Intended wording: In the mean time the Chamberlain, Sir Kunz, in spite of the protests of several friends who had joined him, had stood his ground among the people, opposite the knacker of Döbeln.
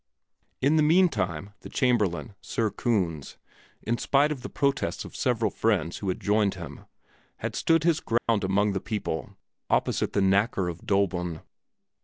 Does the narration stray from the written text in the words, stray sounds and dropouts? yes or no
yes